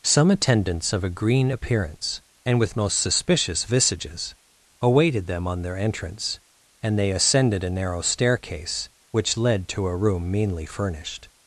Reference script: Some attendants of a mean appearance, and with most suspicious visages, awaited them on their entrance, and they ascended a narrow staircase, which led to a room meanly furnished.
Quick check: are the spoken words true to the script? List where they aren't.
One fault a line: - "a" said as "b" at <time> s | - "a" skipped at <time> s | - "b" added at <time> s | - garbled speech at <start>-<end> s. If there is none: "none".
- "mean" said as "green" at 1.1 s